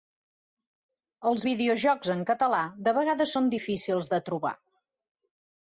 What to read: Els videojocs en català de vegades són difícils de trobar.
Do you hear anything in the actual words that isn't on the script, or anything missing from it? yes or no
no